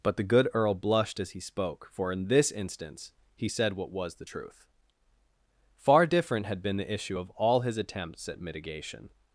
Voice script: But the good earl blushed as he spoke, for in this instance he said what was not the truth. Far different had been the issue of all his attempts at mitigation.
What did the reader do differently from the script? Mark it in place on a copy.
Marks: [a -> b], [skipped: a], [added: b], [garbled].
But the good earl blushed as he spoke, for in this instance he said what was [skipped: not] the truth. Far different had been the issue of all his attempts at mitigation.